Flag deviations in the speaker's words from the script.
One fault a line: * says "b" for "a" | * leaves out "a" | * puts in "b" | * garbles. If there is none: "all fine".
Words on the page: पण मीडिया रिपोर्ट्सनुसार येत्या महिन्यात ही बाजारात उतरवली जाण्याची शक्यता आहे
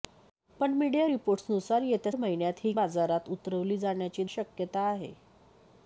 all fine